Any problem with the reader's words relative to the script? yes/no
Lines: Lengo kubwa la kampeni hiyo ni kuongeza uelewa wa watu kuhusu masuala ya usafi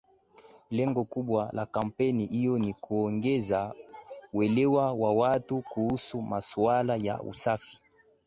no